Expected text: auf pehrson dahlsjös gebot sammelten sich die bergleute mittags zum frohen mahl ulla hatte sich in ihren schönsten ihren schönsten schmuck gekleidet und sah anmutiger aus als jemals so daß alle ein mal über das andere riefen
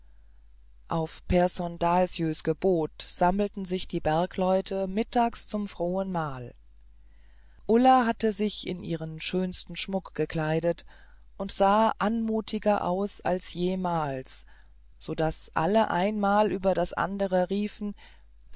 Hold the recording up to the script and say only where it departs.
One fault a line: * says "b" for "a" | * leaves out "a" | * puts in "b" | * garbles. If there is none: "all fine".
* leaves out "ihren schönsten"